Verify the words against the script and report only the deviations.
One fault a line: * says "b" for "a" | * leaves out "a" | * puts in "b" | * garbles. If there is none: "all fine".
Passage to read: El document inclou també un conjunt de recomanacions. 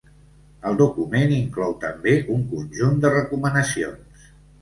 all fine